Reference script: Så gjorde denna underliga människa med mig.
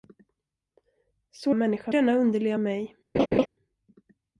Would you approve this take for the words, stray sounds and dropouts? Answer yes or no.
no